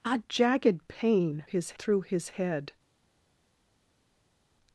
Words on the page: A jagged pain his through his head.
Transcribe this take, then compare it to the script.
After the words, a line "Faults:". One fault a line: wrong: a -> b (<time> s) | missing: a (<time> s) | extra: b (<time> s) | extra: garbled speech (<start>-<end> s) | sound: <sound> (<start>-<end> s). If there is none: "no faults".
A jagged pain his through his head.
Faults:
no faults